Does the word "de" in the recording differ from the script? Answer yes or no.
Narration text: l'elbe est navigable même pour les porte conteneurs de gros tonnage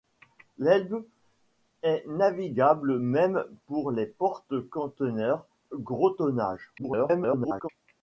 yes